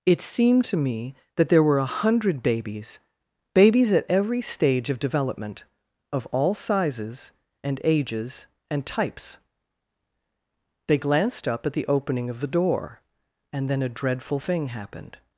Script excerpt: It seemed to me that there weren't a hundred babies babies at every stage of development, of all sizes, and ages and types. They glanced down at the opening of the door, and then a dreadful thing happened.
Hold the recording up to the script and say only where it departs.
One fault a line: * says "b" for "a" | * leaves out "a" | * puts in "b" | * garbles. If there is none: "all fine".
* says "were" for "weren't"
* says "up" for "down"